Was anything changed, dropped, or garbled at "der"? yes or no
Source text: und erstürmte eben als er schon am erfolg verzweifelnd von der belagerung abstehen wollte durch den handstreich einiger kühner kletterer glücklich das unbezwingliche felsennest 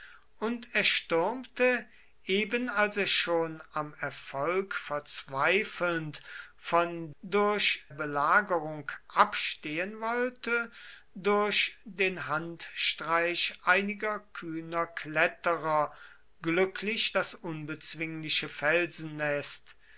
yes